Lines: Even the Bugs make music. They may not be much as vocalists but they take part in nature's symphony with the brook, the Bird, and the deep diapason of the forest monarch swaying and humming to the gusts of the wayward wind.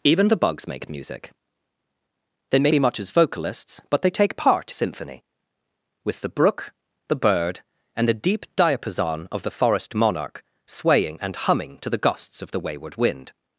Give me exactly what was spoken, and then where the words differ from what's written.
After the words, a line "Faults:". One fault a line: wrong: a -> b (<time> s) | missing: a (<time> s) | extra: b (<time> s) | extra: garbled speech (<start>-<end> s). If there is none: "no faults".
Even the Bugs make music. They may be much as vocalists but they take part symphony with the brook, the Bird, and the deep diapason of the forest monarch swaying and humming to the gusts of the wayward wind.
Faults:
missing: not (2.7 s)
missing: in nature's (4.7 s)